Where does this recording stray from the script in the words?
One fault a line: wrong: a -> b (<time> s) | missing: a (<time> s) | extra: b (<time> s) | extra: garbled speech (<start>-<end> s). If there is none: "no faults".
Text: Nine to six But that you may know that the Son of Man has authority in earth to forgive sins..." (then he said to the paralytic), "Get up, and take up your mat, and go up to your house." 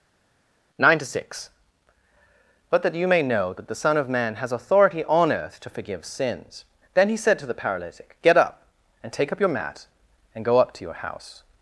wrong: in -> on (5.1 s)